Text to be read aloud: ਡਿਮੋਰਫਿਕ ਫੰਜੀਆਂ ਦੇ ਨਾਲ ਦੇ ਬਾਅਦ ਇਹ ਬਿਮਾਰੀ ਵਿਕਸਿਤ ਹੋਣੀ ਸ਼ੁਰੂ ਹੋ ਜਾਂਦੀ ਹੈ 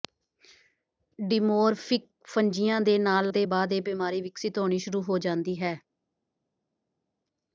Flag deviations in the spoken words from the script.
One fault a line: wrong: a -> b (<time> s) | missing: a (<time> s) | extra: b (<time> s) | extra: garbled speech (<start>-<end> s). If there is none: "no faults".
no faults